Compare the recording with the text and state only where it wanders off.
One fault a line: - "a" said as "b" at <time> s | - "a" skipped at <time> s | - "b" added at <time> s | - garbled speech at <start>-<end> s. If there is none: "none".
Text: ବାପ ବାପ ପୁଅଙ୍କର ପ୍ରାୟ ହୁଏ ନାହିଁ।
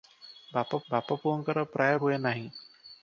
none